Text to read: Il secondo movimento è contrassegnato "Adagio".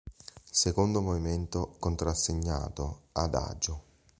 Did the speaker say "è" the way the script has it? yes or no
no